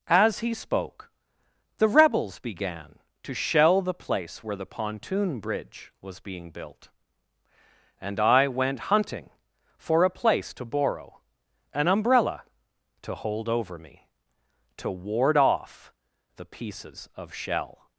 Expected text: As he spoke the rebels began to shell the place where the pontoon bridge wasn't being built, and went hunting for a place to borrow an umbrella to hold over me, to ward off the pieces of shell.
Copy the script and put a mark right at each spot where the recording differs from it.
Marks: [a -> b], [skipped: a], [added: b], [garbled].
As he spoke the rebels began to shell the place where the pontoon bridge [wasn't -> was] being built, and [added: I] went hunting for a place to borrow an umbrella to hold over me, to ward off the pieces of shell.